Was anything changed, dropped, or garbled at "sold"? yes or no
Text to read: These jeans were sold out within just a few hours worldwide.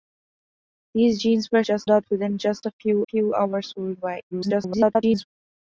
yes